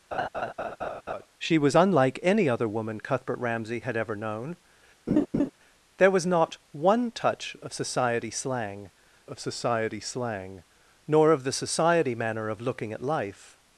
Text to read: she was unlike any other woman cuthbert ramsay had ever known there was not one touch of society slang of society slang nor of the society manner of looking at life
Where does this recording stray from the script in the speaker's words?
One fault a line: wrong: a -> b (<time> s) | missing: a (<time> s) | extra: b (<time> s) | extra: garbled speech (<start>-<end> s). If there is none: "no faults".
no faults